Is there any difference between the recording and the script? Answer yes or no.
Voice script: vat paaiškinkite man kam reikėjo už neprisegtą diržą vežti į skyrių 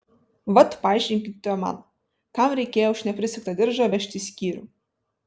no